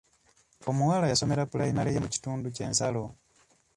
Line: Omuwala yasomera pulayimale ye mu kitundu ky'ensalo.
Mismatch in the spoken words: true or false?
false